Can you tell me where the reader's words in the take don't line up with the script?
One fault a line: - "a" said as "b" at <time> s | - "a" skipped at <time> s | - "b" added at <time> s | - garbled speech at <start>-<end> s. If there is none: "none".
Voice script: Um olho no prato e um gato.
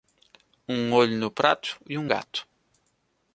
none